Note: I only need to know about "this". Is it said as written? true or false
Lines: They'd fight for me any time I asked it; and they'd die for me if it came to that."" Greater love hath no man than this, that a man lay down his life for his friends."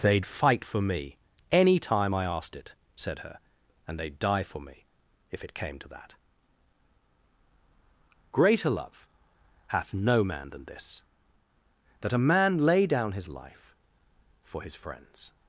true